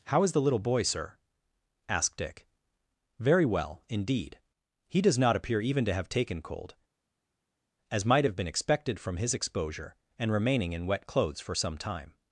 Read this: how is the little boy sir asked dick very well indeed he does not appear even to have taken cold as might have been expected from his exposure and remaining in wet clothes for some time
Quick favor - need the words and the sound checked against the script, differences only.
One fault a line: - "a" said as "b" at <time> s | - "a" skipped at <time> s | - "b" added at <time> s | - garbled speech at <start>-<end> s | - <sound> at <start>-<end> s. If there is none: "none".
none